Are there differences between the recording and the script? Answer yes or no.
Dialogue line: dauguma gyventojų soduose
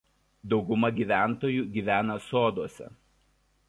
yes